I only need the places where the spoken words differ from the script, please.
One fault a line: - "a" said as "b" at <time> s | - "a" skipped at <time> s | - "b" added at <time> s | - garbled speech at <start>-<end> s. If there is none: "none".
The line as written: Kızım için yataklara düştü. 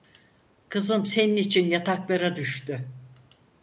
- "senin" added at 1.1 s